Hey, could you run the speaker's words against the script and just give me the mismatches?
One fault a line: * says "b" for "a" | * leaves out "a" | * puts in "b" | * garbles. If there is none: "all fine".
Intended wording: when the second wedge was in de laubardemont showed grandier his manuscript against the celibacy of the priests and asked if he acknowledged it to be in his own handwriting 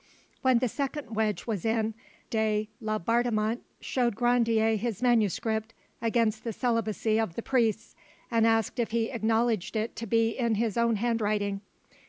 all fine